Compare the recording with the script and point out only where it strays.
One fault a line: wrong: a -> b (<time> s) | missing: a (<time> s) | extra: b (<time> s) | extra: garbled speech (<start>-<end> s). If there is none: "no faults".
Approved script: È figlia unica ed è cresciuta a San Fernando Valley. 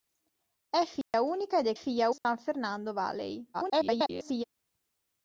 wrong: cresciuta -> figlia (1.7 s)
extra: garbled speech (3.5-4.4 s)